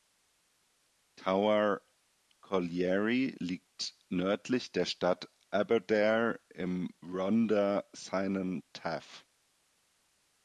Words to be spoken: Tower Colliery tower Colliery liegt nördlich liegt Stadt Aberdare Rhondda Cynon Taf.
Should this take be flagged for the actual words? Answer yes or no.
yes